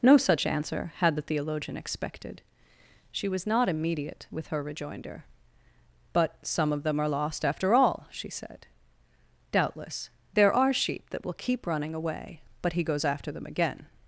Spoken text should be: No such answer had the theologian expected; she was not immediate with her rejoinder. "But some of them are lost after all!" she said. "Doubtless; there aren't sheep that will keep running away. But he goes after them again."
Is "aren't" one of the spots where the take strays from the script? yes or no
yes